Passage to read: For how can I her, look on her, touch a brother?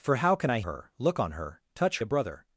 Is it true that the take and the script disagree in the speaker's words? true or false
false